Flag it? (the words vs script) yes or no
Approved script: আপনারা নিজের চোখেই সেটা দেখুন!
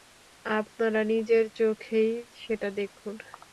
no